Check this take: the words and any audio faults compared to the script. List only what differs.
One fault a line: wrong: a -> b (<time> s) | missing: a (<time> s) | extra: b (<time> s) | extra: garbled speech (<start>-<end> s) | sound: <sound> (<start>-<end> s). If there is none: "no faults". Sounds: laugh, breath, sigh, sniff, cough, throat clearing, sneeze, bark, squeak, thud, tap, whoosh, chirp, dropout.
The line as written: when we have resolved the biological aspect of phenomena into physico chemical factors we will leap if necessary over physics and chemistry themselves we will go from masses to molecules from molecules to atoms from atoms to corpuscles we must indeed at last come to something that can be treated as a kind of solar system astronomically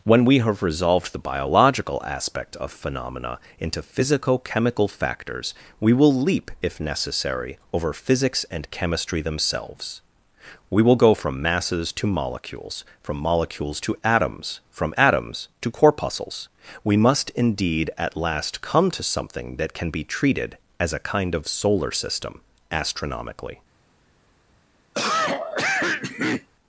sound: cough (24.9-26.5 s)